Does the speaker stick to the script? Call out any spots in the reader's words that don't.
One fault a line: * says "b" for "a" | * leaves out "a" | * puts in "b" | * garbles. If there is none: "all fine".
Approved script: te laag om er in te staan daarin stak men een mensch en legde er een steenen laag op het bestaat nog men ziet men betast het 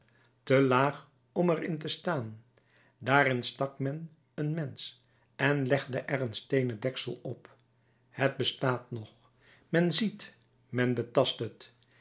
* says "deksel" for "laag"